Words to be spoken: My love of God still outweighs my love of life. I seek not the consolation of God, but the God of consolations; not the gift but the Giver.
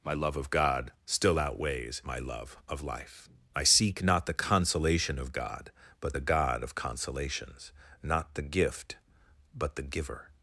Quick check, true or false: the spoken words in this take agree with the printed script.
true